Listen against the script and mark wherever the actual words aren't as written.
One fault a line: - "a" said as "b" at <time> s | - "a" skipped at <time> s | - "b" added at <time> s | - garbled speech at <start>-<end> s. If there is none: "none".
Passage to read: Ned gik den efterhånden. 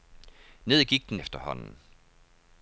none